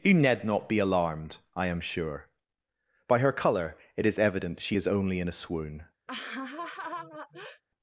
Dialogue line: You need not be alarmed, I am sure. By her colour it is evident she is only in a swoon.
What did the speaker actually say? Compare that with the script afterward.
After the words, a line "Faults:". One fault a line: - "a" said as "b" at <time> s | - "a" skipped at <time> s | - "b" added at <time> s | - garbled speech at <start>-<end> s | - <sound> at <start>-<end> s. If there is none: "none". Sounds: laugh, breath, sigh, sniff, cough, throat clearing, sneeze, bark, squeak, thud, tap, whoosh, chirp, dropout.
You need not be alarmed, I am sure. By her colour it is evident she is only in a swoon.
Faults:
- laugh at 6.1-7.6 s